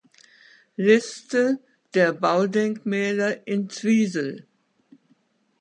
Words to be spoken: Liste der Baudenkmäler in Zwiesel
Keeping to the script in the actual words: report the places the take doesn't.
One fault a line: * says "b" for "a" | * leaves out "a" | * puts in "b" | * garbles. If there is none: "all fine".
all fine